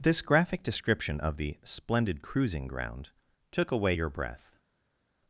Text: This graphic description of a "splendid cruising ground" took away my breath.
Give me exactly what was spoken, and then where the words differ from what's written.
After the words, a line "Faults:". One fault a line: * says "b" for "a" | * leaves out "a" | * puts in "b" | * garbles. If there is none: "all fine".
This graphic description of the "splendid cruising ground" took away your breath.
Faults:
* says "the" for "a"
* says "your" for "my"